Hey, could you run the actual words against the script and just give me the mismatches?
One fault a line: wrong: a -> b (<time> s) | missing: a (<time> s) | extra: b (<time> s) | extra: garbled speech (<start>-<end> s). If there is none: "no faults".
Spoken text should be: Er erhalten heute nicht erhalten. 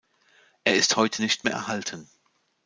wrong: erhalten -> ist (0.8 s)
extra: mehr (1.4 s)